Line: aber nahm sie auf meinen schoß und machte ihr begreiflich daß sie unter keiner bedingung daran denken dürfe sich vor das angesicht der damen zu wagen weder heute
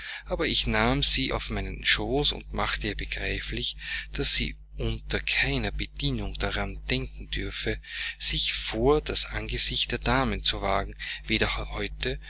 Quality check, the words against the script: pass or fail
fail